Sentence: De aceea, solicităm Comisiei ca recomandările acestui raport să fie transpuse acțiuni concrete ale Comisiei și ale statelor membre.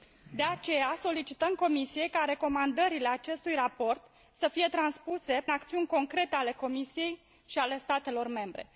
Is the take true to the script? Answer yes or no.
yes